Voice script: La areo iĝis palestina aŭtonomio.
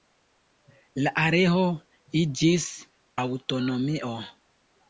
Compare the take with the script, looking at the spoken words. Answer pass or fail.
fail